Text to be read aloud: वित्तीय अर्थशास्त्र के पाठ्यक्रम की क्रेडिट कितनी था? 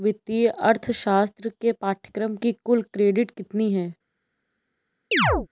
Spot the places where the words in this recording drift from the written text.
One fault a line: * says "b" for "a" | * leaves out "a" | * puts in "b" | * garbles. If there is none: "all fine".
* puts in "कुल"
* says "है" for "था"